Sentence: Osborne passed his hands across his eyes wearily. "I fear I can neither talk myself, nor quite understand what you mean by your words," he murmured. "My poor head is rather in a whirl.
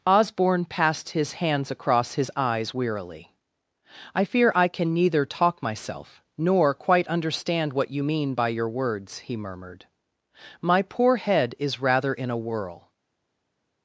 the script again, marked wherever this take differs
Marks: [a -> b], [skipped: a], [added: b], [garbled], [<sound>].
Osborne passed his hands across his eyes wearily. "I fear I can neither talk myself, nor quite understand what you mean by your words," he murmured. "My poor head is rather in a whirl.